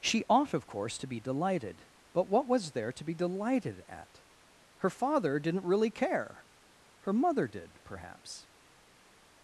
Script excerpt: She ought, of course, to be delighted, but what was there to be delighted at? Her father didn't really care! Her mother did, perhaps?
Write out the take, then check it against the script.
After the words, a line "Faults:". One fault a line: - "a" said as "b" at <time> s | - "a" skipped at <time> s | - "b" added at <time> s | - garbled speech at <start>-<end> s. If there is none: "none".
She ought, of course, to be delighted, but what was there to be delighted at? Her father didn't really care! Her mother did, perhaps?
Faults:
none